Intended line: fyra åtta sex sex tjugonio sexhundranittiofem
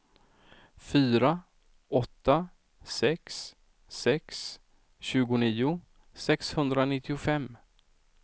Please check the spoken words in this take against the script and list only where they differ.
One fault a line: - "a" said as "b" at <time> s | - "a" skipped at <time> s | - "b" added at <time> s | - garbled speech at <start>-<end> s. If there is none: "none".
none